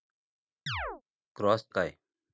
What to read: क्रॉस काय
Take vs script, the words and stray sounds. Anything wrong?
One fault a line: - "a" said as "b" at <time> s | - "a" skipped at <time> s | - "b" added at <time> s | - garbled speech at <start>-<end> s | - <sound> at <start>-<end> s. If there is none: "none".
- chirp at 0.7-1.0 s